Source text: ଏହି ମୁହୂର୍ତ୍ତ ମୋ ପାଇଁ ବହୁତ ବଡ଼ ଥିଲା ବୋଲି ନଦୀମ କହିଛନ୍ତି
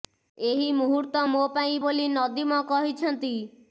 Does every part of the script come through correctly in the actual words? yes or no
no